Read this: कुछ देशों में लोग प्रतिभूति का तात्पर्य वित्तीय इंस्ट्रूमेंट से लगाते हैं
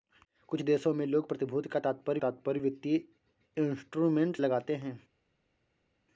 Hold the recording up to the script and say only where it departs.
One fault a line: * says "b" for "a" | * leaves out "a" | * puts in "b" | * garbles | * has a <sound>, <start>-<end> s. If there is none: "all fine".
* puts in "तात्पर्य"
* leaves out "से"